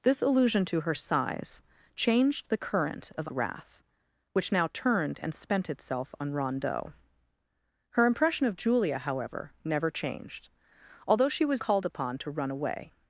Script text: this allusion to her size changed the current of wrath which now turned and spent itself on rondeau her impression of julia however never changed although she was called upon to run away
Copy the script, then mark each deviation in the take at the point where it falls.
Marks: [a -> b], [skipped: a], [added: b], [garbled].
this allusion to her size changed the current of wrath which now turned and spent itself on rondeau her impression of julia however never changed although she was called upon to run away